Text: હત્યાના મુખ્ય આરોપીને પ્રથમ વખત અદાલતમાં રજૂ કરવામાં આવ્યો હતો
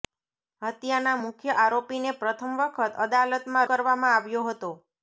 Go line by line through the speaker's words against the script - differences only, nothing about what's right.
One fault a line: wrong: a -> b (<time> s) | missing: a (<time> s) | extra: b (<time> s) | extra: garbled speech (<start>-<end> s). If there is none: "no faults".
missing: રજૂ (3.7 s)